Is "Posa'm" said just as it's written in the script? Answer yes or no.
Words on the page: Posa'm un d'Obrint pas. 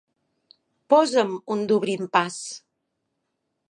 yes